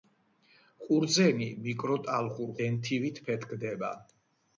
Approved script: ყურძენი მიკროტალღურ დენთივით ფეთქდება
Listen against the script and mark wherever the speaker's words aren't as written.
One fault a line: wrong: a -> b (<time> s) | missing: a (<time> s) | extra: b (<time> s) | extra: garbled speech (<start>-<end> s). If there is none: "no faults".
no faults